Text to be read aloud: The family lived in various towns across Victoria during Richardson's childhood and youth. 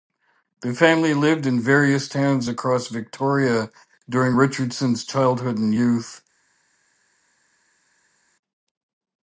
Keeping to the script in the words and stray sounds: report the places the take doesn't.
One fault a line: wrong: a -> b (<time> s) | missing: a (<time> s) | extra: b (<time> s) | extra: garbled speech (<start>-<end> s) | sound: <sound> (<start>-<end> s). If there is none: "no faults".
no faults